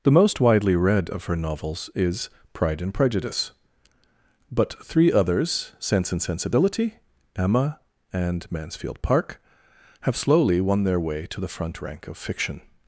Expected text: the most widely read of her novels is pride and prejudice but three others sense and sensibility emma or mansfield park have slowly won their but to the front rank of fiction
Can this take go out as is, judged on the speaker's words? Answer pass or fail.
fail